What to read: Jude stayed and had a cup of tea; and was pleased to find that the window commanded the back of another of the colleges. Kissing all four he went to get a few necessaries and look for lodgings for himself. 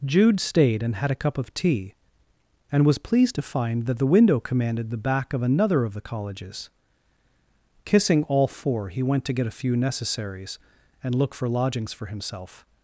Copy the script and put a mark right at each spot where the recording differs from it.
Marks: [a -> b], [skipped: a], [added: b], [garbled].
Jude stayed and had a cup of tea; and was pleased to find that the window commanded the back of another of the colleges. Kissing all four he went to get a few necessaries and look for lodgings for himself.